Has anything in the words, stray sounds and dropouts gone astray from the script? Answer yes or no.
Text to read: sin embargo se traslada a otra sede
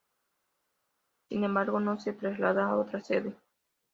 yes